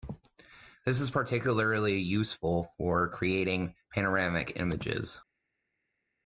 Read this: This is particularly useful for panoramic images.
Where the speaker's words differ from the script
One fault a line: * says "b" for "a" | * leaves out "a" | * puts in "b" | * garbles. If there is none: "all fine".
* puts in "creating"